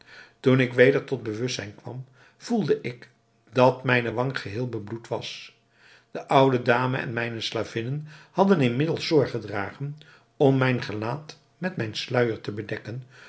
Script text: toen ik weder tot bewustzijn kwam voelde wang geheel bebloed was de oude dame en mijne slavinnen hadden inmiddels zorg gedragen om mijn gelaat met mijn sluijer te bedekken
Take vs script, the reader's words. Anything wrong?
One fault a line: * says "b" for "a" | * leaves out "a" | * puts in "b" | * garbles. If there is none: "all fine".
* puts in "ik dat mijne"